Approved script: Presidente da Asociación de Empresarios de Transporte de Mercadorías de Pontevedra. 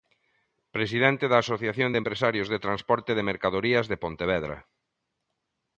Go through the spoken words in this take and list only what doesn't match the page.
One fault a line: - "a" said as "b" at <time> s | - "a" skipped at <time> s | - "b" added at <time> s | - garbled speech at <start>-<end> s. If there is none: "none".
none